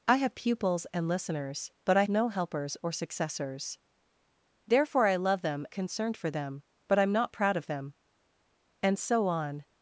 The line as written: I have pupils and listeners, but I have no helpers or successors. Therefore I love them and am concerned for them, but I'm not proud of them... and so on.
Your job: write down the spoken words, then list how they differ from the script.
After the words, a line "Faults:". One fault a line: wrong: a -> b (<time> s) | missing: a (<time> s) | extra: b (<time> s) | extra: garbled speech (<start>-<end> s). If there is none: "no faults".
I have pupils and listeners, but I no helpers or successors. Therefore I love them concerned for them, but I'm not proud of them... and so on.
Faults:
missing: have (2.0 s)
missing: and am (5.7 s)